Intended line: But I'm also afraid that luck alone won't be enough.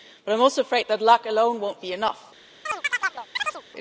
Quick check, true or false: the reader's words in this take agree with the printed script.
true